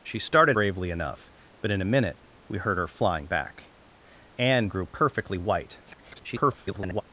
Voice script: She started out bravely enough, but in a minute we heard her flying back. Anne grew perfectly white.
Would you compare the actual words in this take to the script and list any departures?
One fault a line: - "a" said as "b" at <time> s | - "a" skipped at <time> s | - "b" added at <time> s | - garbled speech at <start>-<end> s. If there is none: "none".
- "out" skipped at 0.6 s
- garbled speech at 5.9-7.0 s